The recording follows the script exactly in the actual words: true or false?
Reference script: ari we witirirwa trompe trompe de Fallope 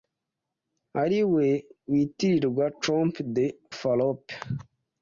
false